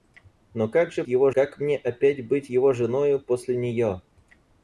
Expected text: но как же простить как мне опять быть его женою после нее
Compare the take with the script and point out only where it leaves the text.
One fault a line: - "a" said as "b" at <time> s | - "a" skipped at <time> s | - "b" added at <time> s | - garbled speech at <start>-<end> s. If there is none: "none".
- "простить" said as "его" at 1.1 s